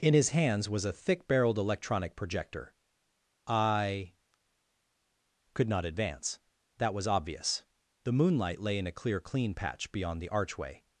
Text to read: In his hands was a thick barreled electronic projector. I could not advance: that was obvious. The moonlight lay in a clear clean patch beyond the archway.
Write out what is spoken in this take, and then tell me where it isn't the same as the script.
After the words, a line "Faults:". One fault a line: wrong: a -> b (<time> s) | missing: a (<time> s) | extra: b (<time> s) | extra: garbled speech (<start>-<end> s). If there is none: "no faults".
In his hands was a thick barreled electronic projector. I could not advance: that was obvious. The moonlight lay in a clear clean patch beyond the archway.
Faults:
no faults